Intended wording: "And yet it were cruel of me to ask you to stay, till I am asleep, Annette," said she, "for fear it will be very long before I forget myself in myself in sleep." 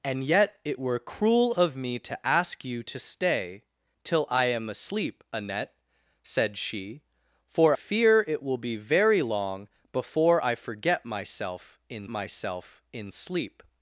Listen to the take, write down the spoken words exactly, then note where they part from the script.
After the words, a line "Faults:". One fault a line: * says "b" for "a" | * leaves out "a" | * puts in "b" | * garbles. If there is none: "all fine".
"And yet it were cruel of me to ask you to stay, till I am asleep, Annette," said she, "for fear it will be very long before I forget myself in myself in sleep."
Faults:
all fine